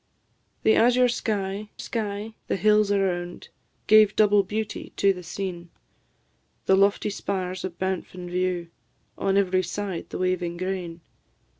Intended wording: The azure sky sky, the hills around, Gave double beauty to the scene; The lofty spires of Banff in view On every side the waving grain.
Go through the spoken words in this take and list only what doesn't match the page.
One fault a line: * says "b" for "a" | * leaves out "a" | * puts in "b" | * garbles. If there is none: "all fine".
all fine